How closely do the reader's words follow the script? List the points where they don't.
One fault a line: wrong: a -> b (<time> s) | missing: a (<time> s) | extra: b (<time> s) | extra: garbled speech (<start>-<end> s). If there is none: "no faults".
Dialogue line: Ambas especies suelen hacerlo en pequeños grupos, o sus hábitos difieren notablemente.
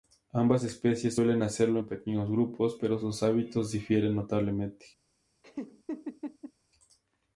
wrong: o -> pero (2.8 s)